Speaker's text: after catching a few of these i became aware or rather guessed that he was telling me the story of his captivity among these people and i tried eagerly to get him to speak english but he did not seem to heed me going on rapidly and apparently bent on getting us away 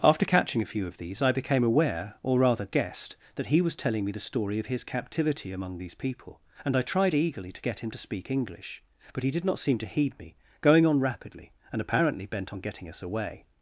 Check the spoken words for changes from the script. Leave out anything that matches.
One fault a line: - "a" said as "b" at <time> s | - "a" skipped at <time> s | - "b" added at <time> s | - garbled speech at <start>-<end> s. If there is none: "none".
none